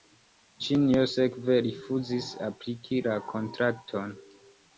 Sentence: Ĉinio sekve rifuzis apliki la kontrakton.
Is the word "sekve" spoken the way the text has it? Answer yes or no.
yes